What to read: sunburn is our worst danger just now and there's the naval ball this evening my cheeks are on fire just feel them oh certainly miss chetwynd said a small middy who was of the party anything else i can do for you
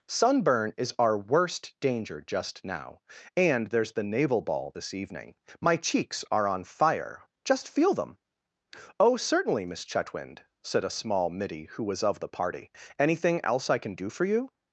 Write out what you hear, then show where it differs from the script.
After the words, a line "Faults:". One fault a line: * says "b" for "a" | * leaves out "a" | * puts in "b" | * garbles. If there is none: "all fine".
sunburn is our worst danger just now and there's the naval ball this evening my cheeks are on fire just feel them oh certainly miss chetwynd said a small middy who was of the party anything else i can do for you
Faults:
all fine